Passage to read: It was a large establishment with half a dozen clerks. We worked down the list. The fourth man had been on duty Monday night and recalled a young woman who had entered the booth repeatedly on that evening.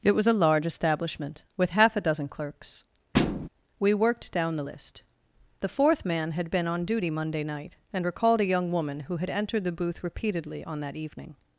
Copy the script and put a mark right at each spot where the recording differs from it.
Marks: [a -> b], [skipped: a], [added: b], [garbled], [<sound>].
It was a large establishment with half a dozen clerks. [thud] We worked down the list. The fourth man had been on duty Monday night and recalled a young woman who had entered the booth repeatedly on that evening.